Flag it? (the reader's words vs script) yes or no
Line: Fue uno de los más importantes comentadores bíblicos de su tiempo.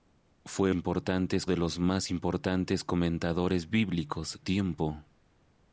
yes